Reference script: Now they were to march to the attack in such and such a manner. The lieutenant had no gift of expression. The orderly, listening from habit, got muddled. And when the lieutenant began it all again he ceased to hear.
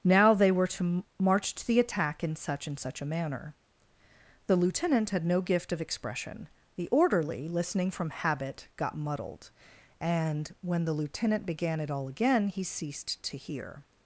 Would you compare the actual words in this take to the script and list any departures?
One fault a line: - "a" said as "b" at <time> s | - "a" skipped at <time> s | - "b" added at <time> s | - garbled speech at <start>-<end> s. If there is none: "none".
none